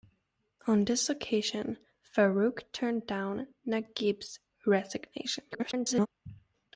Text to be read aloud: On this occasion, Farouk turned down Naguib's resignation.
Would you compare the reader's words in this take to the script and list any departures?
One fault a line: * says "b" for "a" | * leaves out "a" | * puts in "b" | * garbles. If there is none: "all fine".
* garbles